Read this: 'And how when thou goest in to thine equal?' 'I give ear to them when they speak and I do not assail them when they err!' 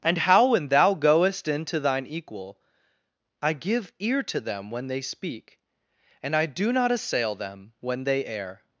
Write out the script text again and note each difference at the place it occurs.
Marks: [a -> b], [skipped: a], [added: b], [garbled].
'And how when thou goest in to thine equal?' 'I give ear to them when they speak and I do not assail them when they err!'